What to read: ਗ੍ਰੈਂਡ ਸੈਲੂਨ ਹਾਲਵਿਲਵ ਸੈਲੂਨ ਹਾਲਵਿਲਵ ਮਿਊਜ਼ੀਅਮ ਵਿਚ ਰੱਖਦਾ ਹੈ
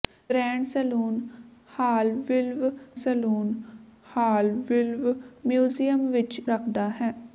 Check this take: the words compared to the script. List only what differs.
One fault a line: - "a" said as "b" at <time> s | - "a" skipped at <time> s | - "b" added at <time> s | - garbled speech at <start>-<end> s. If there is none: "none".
none